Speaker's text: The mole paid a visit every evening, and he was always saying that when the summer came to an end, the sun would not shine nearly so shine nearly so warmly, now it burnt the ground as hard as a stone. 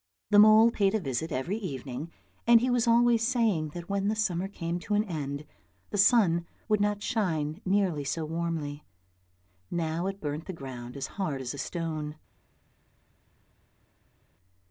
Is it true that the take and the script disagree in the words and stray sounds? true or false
true